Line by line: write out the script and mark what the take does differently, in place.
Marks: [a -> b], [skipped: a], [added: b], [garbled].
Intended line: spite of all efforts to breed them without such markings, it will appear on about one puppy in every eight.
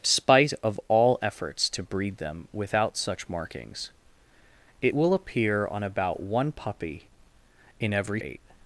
spite of all efforts to breed them without such markings, it will appear on about one puppy in every eight.